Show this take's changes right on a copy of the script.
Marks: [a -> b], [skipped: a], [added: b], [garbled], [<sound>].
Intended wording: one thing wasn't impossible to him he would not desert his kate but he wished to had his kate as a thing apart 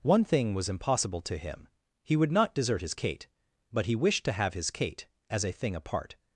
one thing [wasn't -> was] impossible to him he would not desert his kate but he wished to [had -> have] his kate as a thing apart